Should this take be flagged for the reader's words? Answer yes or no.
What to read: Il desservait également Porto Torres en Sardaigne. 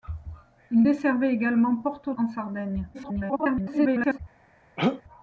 yes